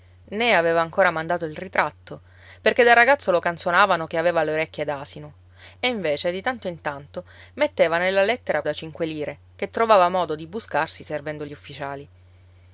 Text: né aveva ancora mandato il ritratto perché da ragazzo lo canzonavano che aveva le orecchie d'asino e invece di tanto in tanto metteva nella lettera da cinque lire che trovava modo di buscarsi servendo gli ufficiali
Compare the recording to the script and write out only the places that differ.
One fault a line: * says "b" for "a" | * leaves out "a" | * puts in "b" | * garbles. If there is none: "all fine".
all fine